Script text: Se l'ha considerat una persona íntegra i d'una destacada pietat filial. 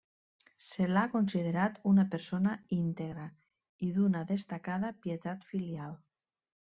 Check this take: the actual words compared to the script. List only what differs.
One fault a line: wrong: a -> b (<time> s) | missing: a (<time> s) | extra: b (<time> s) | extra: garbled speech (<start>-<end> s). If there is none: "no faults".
no faults